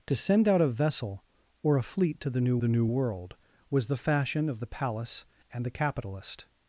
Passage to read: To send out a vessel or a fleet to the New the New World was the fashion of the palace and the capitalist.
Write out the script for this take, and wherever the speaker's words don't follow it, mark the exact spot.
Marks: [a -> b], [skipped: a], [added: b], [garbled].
To send out a vessel or a fleet to the New the New World was the fashion of the palace and the capitalist.